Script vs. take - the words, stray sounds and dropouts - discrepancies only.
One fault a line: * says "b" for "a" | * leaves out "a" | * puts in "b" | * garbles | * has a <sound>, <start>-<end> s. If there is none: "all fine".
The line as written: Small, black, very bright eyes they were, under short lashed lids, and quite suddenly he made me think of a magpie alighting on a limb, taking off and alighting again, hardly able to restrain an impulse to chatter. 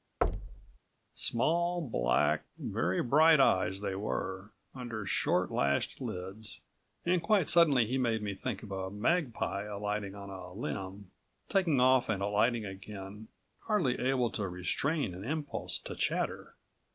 * has a thud, 0.2-0.8 s